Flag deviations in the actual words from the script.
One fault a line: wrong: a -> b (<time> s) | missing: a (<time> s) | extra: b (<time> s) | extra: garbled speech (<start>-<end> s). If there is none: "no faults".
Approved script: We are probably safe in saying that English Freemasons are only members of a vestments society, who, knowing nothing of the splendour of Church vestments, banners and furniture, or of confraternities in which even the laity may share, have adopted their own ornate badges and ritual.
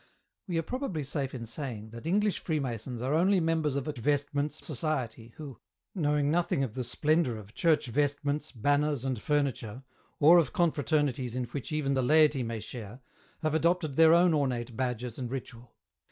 no faults